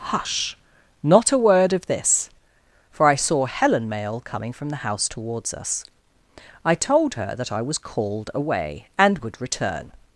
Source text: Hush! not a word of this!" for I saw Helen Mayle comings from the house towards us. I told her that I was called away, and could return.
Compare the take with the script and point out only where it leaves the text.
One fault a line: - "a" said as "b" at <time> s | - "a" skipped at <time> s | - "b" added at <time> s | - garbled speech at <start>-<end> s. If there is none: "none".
- "comings" said as "coming" at 4.2 s
- "could" said as "would" at 9.2 s